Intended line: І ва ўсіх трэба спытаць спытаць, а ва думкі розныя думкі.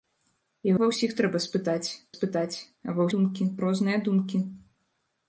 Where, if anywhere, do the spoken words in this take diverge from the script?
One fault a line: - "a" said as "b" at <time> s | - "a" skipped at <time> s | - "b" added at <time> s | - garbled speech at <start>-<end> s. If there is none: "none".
none